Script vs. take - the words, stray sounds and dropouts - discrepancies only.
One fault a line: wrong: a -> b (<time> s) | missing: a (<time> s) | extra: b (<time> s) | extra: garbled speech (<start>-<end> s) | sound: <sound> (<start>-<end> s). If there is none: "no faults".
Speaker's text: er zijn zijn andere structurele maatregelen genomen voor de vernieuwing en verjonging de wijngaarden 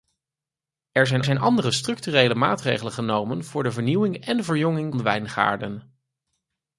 no faults